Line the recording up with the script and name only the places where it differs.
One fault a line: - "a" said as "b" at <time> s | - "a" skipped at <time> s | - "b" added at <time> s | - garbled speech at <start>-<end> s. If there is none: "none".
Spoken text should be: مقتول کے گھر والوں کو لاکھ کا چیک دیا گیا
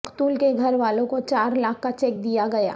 - "چار" added at 1.2 s